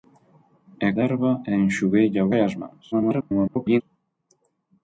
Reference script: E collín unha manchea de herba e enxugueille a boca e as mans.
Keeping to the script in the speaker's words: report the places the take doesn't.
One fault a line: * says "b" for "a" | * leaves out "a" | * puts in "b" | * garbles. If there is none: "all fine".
* leaves out "collín unha manchea"
* leaves out "boca"
* garbles